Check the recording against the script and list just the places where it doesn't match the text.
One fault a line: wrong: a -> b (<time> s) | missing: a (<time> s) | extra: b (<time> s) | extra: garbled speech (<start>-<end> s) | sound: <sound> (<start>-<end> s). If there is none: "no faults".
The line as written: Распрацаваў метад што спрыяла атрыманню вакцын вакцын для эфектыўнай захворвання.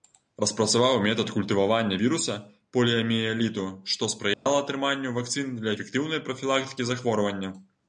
extra: культывавання віруса поліяміэліту (1.4 s)
sound: dropout (4.3-4.5 s)
missing: вакцын (5.6 s)
extra: прафілактыкі (6.3 s)